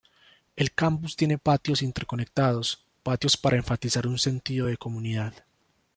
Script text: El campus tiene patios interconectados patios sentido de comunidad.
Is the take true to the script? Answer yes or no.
no